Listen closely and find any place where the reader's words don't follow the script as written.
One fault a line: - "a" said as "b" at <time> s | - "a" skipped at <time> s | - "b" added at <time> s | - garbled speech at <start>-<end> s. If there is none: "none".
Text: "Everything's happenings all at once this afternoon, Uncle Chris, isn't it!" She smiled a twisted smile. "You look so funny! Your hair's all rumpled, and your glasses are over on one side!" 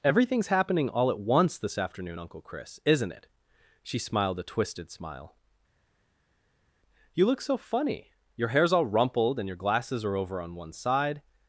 - "happenings" said as "happening" at 0.5 s